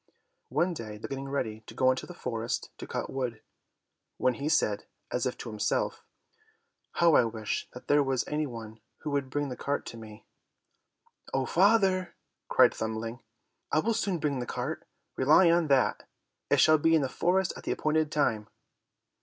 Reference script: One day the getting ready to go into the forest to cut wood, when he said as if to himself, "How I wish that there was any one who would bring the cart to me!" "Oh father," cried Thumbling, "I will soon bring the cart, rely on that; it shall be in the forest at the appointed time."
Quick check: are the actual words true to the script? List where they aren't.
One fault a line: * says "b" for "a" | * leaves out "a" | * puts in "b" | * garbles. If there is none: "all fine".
all fine